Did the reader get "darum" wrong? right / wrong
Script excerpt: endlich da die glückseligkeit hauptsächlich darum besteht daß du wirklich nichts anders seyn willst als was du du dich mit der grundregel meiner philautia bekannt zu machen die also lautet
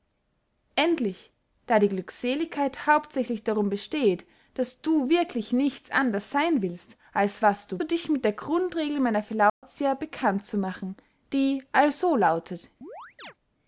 right